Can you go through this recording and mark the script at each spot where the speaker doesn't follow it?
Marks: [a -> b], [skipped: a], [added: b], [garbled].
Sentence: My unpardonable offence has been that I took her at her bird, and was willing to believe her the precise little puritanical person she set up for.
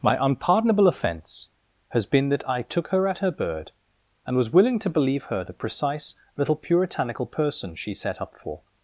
My unpardonable offence has been that I took her at her bird, and was willing to believe her the precise little puritanical person she set up for.